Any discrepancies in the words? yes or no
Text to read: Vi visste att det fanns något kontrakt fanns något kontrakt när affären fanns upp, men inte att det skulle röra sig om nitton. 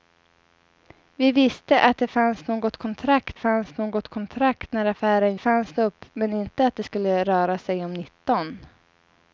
no